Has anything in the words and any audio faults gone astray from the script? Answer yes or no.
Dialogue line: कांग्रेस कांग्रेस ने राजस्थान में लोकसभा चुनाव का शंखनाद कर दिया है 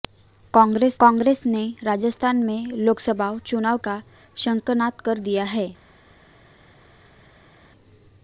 no